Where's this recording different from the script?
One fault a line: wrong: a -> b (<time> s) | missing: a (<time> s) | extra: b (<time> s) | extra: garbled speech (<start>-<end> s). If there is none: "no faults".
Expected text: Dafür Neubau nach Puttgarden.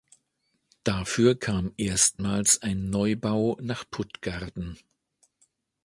extra: kam erstmals ein (1.4 s)